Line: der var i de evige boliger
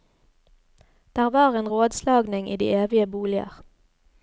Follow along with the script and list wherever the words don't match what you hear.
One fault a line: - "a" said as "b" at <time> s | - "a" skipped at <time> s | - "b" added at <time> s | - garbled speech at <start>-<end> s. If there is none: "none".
- "en rådslagning" added at 1.5 s